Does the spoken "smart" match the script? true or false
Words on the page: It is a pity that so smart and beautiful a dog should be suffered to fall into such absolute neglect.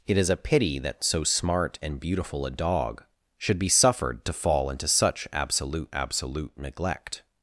true